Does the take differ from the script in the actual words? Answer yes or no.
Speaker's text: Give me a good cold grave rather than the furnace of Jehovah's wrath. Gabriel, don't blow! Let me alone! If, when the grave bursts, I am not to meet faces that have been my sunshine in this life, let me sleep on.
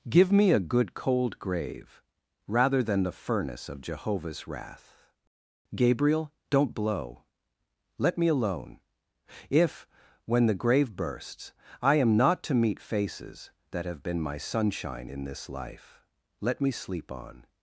no